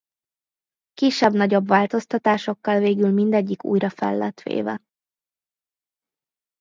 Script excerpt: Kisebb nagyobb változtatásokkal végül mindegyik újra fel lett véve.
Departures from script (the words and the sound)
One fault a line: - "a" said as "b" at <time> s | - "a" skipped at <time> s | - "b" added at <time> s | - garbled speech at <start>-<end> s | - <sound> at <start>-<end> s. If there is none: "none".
none